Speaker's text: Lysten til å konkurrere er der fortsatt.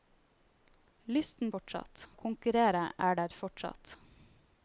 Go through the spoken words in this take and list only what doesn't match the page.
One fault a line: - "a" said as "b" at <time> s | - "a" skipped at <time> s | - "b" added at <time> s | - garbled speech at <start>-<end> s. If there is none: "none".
- "til" said as "fortsatt" at 1.5 s